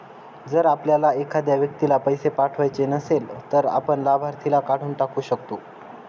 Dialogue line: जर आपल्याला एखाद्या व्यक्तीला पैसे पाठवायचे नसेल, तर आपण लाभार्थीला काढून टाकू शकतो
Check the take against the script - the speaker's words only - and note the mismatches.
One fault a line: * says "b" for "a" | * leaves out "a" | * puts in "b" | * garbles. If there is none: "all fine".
all fine